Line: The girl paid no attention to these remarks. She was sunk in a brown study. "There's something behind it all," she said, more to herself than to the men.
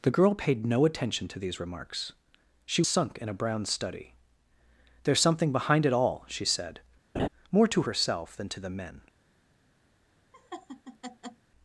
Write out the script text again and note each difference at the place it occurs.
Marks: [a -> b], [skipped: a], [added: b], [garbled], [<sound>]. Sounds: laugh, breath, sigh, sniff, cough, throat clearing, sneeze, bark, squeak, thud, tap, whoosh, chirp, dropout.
The girl paid no attention to these remarks. She [skipped: was] sunk in a brown study. "There's something behind it all," she said, [laugh] more to herself than to the men. [laugh]